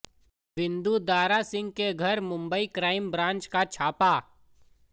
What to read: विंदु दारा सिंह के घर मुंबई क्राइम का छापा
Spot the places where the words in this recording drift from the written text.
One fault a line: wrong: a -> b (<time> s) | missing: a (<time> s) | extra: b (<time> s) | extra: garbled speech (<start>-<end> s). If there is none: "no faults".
extra: ब्रांच (3.1 s)